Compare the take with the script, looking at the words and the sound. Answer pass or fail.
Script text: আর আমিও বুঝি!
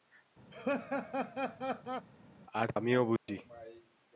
fail